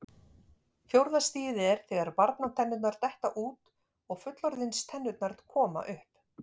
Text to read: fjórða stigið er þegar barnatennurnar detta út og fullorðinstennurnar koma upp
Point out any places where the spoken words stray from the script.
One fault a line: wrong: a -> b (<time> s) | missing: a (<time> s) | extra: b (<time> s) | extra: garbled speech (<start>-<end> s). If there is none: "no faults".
no faults